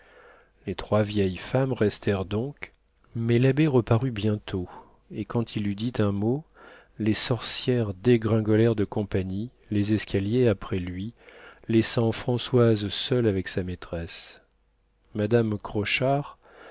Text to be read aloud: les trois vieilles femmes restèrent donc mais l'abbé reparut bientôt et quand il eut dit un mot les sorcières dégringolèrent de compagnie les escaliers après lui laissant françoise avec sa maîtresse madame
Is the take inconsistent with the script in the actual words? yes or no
yes